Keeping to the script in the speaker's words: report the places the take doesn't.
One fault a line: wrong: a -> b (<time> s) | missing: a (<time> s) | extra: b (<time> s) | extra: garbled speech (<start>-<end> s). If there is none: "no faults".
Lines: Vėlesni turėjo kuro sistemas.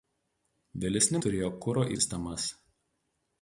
no faults